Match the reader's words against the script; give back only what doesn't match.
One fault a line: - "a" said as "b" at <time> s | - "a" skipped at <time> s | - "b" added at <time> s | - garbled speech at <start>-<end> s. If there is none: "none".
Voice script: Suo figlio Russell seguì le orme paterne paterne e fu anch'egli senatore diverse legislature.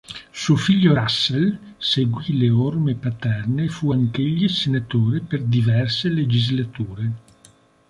- "paterne" skipped at 3.6 s
- "per" added at 5.2 s